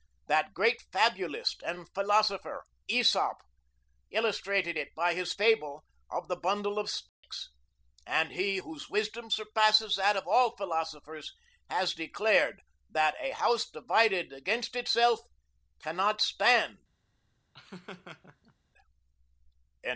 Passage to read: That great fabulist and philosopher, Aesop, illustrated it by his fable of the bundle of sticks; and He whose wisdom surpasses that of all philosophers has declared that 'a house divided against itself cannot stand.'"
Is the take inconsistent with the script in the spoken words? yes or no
no